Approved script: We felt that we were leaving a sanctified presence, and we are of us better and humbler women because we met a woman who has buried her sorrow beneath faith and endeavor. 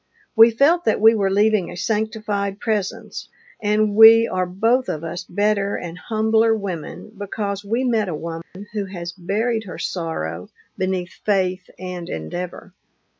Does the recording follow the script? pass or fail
fail